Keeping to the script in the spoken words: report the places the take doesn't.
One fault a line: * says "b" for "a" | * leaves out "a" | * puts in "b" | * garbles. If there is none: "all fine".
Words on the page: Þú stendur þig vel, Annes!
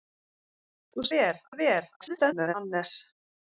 * says "vel" for "stendur"
* garbles